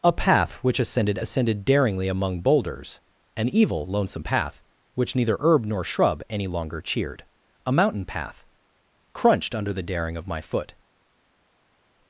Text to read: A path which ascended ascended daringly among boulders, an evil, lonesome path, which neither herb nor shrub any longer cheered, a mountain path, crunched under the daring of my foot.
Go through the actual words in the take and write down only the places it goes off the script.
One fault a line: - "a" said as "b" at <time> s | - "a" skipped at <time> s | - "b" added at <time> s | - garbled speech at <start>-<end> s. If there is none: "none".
none